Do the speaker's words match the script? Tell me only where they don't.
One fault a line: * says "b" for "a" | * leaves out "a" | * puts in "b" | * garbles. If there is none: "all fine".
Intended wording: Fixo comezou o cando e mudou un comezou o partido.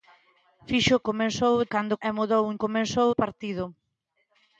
all fine